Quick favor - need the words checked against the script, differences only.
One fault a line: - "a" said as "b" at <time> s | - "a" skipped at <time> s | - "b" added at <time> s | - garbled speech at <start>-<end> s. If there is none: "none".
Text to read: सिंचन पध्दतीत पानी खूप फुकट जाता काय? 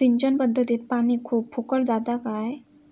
none